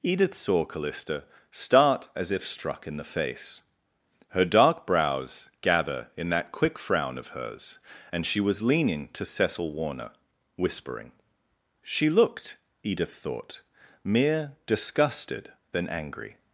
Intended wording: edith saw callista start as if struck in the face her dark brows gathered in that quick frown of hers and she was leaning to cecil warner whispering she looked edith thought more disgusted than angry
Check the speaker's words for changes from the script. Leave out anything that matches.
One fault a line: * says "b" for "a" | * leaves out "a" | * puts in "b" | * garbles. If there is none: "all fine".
* says "gather" for "gathered"
* says "mere" for "more"